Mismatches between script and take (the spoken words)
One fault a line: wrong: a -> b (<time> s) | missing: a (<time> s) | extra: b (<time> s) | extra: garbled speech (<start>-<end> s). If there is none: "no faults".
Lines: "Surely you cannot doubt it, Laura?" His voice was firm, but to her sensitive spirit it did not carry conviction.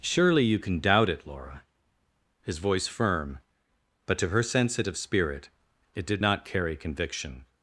wrong: cannot -> can (0.6 s)
missing: was (2.9 s)